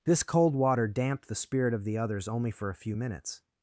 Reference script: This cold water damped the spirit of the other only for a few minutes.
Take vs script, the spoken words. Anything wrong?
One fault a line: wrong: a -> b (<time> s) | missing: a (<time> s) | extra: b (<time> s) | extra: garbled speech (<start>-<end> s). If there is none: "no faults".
wrong: other -> others (1.9 s)